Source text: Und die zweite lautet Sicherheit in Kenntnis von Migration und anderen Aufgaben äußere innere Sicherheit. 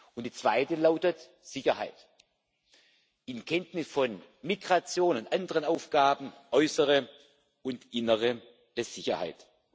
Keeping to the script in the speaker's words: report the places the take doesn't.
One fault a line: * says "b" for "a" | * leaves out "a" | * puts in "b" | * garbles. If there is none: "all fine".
* puts in "und"